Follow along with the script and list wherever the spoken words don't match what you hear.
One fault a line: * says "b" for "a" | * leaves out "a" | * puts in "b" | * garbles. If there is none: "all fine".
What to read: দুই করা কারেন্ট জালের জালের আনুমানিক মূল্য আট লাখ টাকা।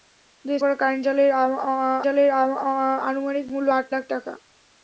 all fine